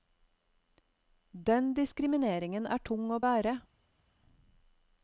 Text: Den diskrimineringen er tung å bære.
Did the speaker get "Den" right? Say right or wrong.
right